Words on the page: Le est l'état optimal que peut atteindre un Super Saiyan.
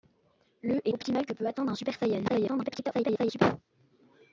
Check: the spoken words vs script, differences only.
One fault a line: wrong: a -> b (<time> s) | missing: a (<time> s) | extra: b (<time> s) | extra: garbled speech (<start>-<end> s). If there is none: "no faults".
missing: l'état (0.9 s)
extra: garbled speech (2.3-3.4 s)